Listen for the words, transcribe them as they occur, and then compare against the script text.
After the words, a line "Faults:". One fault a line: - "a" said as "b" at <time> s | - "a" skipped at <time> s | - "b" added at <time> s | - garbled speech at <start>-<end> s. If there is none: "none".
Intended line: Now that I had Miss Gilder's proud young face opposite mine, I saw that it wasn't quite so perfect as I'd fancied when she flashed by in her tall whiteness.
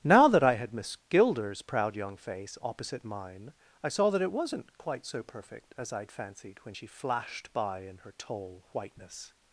Now that I had Miss Gilder's proud young face opposite mine, I saw that it wasn't quite so perfect as I'd fancied when she flashed by in her tall whiteness.
Faults:
none